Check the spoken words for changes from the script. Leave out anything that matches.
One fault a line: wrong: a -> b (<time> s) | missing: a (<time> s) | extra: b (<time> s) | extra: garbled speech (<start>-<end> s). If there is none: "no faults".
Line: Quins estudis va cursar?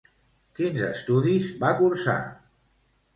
no faults